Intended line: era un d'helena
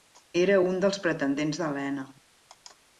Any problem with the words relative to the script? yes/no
yes